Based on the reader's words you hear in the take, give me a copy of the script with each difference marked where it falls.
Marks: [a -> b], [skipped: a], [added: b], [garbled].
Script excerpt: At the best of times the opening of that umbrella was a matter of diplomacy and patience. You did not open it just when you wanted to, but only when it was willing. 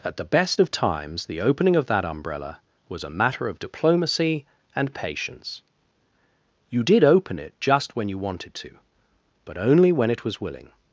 At the best of times the opening of that umbrella was a matter of diplomacy and patience. You did [skipped: not] open it just when you wanted to, but only when it was willing.